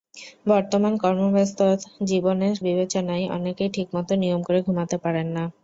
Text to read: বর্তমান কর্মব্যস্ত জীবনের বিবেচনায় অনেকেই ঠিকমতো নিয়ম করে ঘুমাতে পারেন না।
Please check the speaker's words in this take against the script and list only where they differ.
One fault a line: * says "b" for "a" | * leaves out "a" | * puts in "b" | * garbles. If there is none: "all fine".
all fine